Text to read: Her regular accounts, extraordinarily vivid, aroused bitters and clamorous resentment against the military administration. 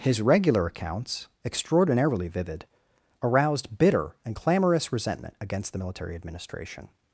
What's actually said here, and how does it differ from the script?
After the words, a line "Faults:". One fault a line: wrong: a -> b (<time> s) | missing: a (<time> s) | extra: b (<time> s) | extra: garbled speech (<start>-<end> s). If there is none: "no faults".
His regular accounts, extraordinarily vivid, aroused bitter and clamorous resentment against the military administration.
Faults:
wrong: Her -> His (0.0 s)
wrong: bitters -> bitter (3.8 s)